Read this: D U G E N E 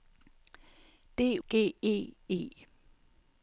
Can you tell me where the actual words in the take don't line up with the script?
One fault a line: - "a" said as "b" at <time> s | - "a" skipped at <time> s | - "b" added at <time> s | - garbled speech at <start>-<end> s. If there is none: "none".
- "U" skipped at 1.4 s
- "N" skipped at 2.1 s